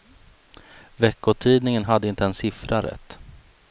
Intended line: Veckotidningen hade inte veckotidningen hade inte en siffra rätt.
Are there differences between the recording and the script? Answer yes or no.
yes